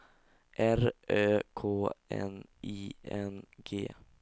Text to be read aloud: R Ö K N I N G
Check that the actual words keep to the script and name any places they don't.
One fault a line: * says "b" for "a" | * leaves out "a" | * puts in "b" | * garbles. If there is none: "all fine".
all fine